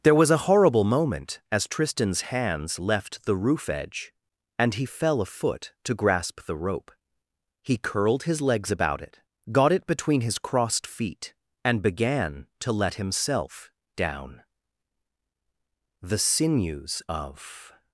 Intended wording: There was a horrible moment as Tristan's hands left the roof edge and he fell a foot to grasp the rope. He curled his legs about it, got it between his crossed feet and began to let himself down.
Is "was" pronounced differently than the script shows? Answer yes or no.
no